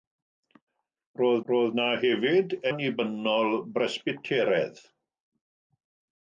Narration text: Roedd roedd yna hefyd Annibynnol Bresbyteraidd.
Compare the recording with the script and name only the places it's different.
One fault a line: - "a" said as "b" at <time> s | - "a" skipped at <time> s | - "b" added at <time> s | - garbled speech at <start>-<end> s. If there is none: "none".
none